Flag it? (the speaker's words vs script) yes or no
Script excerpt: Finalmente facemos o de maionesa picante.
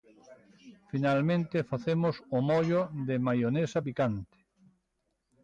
yes